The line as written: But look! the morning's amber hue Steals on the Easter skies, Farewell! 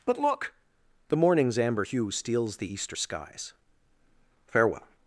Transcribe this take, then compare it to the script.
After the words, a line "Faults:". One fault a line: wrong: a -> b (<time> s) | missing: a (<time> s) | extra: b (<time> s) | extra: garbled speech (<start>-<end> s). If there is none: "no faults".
But look! the morning's amber hue Steals the Easter skies, Farewell!
Faults:
missing: on (2.6 s)